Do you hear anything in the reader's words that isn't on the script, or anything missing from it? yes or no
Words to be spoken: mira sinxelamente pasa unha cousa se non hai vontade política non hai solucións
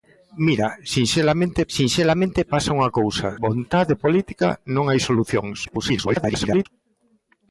yes